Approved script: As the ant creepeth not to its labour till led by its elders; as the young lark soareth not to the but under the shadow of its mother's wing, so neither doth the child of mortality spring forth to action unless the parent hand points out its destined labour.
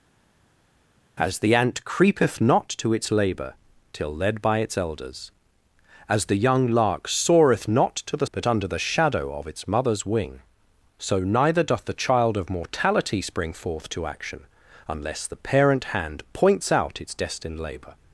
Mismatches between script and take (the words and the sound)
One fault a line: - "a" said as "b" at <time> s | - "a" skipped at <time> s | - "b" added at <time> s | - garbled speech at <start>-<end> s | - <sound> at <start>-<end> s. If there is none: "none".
none